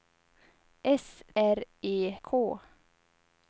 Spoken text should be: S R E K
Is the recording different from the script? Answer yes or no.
no